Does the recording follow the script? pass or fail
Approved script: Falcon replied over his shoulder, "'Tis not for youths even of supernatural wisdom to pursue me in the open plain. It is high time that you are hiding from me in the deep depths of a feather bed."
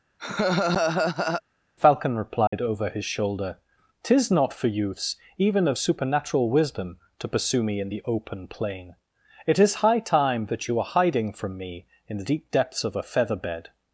pass